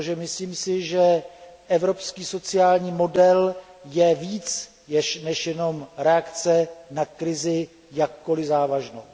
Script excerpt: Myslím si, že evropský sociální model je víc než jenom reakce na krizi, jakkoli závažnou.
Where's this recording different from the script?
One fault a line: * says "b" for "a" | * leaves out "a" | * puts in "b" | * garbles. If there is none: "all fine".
all fine